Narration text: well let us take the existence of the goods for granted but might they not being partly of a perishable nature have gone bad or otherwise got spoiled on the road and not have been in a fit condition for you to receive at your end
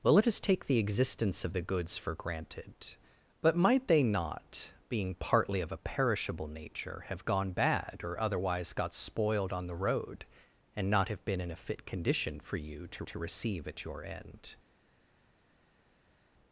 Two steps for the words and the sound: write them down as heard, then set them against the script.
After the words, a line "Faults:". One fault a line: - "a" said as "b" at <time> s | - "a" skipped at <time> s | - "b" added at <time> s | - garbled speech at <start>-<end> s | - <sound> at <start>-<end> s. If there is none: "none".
well let us take the existence of the goods for granted but might they not being partly of a perishable nature have gone bad or otherwise got spoiled on the road and not have been in a fit condition for you to to receive at your end
Faults:
- "to" added at 13.0 s